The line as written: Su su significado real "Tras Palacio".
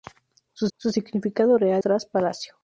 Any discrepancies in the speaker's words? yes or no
no